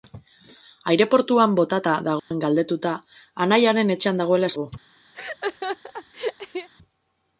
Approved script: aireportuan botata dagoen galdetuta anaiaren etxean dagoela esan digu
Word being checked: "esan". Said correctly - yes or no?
no